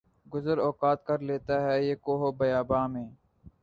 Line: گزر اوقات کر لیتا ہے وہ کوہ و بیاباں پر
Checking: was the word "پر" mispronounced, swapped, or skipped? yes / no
yes